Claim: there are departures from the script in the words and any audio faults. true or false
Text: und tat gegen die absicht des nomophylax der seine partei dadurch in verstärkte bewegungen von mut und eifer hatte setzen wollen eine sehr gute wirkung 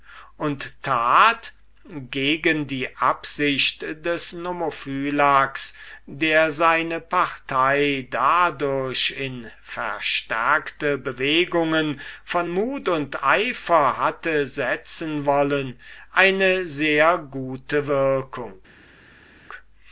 false